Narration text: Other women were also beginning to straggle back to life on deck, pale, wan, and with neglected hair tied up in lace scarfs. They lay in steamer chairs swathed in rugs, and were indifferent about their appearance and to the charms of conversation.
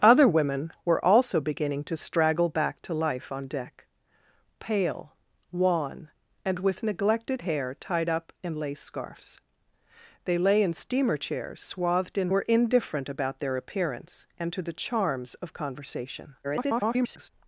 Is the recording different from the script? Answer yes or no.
yes